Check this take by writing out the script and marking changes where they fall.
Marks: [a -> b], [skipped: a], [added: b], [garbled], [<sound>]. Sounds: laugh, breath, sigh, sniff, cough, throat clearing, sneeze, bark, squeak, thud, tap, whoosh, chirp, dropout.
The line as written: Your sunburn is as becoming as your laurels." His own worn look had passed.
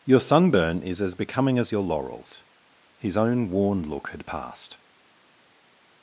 Your sunburn is as becoming as your laurels." His own worn look had passed.